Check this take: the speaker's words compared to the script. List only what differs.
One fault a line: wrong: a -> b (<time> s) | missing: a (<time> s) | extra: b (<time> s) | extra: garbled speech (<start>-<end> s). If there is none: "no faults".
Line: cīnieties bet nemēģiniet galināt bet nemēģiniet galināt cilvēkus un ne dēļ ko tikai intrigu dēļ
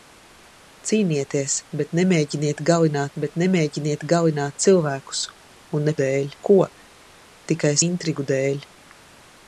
no faults